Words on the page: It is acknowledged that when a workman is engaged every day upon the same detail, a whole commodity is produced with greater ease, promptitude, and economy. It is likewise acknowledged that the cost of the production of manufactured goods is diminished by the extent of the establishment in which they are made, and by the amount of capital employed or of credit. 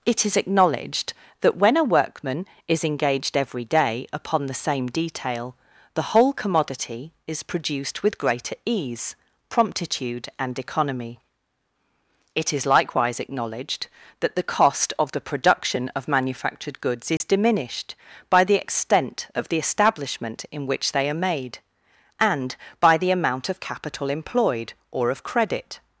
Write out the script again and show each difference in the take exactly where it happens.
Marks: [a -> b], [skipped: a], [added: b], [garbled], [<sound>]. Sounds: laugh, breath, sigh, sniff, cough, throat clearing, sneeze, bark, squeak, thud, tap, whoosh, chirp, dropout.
It is acknowledged that when a workman is engaged every day upon the same detail, [a -> the] whole commodity is produced with greater ease, promptitude, and economy. It is likewise acknowledged that the cost of the production of manufactured goods is [dropout] diminished by the extent of the establishment in which they are made, and by the amount of capital employed or of credit.